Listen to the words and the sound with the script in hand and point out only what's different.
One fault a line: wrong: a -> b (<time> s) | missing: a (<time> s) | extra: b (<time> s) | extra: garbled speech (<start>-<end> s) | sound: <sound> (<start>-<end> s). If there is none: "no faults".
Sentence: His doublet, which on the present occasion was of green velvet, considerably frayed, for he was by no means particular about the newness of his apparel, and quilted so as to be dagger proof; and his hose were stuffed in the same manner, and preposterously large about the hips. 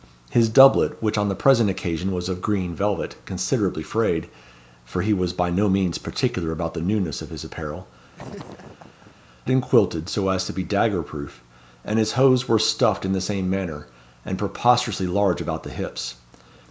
sound: laugh (8.1-9.2 s)